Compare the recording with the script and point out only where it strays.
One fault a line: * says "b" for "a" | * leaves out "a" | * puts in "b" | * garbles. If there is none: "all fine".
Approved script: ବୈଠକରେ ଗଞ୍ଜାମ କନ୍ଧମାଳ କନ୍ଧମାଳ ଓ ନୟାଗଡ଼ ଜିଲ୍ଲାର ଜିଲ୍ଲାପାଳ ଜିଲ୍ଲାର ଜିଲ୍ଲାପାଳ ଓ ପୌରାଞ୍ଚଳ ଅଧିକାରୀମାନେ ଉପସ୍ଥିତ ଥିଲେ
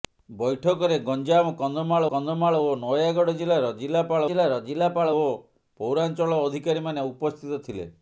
all fine